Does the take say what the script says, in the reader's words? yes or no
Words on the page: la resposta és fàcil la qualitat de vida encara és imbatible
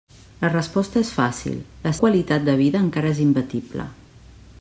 yes